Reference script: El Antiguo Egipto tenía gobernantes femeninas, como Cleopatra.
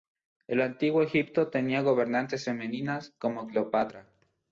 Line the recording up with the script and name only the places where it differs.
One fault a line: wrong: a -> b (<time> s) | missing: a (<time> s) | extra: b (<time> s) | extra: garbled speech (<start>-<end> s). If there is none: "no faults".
no faults